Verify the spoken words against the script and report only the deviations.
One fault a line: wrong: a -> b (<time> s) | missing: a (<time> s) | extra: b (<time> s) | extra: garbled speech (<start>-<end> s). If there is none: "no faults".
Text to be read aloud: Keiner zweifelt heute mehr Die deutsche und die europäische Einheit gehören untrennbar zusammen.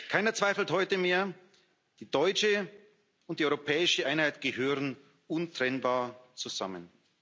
no faults